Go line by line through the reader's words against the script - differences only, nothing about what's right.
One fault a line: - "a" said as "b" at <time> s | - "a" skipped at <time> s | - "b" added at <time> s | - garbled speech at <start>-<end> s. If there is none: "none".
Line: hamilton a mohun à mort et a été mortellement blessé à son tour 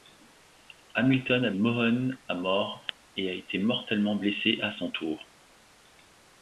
none